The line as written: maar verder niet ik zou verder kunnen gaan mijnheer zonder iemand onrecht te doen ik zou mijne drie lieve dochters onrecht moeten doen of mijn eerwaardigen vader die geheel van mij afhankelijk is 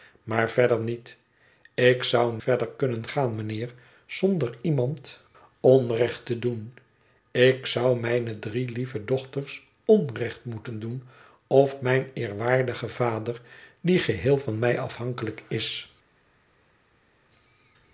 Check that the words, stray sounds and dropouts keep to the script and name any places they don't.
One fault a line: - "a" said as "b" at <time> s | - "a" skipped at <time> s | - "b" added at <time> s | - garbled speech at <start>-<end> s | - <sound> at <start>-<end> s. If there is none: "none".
none